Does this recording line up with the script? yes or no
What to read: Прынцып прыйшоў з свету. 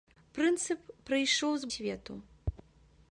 yes